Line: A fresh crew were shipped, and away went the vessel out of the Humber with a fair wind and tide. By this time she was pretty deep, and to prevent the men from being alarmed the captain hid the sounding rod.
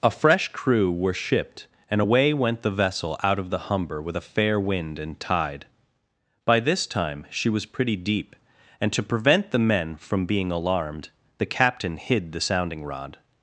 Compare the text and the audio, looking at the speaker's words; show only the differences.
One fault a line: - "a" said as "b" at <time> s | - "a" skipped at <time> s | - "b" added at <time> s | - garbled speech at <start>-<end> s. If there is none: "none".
none